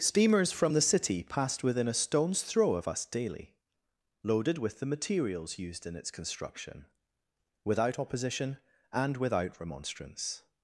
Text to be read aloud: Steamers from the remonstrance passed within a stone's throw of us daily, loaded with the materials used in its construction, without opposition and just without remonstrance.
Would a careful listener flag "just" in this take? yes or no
yes